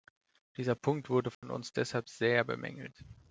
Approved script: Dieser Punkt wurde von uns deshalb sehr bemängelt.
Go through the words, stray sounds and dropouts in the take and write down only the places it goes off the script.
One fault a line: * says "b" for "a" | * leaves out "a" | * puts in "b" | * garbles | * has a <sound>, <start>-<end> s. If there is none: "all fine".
* has a dropout, 1.3-1.4 s